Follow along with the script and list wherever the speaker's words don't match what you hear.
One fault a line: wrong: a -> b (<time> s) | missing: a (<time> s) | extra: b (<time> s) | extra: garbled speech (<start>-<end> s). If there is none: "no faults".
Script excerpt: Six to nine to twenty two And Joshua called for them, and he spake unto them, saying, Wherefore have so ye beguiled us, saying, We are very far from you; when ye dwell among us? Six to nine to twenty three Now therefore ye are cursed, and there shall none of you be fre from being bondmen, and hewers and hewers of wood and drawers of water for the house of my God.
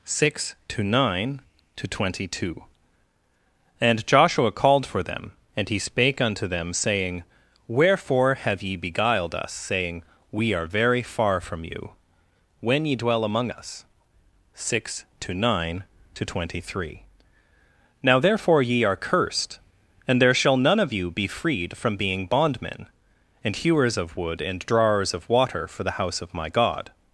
missing: so (8.6 s)
wrong: fre -> freed (21.3 s)
missing: and hewers (24.0 s)